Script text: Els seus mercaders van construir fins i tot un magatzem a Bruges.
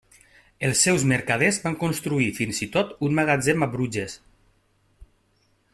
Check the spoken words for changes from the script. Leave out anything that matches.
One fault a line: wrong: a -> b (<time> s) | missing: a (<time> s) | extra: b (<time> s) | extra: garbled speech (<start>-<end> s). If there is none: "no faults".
no faults